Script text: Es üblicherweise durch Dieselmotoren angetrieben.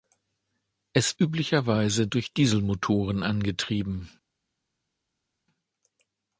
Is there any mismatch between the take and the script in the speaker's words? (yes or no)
no